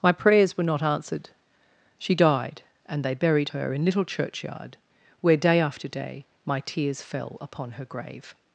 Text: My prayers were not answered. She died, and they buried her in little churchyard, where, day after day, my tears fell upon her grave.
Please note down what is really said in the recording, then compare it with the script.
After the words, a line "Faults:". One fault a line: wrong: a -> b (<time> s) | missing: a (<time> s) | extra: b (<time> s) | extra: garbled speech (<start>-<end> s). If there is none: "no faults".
My prayers were not answered. She died, and they buried her in little churchyard, where, day after day, my tears fell upon her grave.
Faults:
no faults